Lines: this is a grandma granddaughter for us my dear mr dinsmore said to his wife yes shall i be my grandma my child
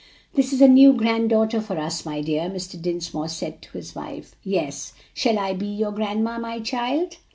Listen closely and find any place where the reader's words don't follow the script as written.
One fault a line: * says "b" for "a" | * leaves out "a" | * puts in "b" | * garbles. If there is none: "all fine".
* says "new" for "grandma"
* says "your" for "my"